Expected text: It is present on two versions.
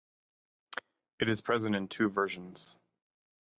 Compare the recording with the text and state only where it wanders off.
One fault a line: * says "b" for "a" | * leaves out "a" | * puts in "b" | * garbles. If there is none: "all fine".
* says "in" for "on"